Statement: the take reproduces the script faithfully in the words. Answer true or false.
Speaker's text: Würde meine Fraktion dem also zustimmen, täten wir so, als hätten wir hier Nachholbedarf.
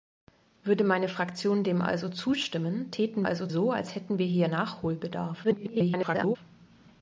false